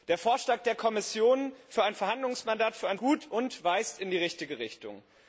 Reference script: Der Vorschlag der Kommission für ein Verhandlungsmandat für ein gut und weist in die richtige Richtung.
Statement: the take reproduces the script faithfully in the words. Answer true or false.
true